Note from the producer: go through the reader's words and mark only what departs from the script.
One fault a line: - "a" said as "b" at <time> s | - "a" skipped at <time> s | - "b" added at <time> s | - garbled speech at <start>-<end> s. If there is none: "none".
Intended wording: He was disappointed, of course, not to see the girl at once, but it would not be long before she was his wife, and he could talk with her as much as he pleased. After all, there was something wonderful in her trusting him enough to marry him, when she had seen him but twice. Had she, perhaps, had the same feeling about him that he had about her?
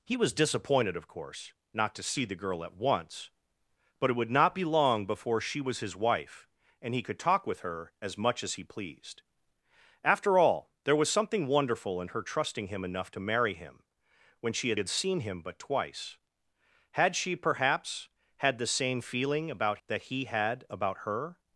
- "had" added at 14.8 s
- "him" skipped at 19.8 s